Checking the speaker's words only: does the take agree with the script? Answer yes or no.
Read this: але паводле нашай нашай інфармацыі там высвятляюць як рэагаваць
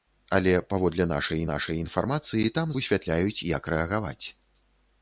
yes